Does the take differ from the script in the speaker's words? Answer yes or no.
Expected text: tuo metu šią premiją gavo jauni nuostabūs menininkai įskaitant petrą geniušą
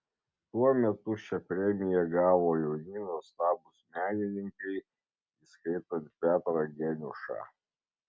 no